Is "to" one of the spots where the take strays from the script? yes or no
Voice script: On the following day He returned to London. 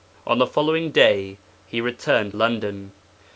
yes